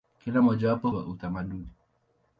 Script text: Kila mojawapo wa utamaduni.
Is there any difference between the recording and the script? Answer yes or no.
no